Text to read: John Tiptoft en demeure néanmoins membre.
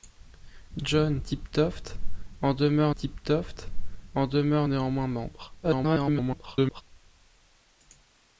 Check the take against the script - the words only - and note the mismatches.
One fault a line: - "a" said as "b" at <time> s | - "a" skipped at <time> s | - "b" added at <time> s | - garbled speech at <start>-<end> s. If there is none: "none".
- "Tiptoft en demeure" added at 2.9 s
- garbled speech at 5.6-6.8 s